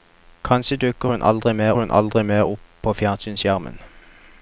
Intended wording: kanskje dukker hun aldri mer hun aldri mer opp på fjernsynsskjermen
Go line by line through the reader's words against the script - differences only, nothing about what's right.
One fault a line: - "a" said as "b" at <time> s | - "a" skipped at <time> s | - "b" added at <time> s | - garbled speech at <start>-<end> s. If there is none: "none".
none